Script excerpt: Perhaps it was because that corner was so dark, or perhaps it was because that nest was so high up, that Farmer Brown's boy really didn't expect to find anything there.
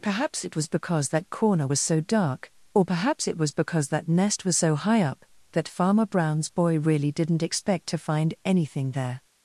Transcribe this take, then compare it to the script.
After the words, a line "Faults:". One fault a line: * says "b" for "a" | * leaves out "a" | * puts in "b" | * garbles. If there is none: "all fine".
Perhaps it was because that corner was so dark, or perhaps it was because that nest was so high up, that Farmer Brown's boy really didn't expect to find anything there.
Faults:
all fine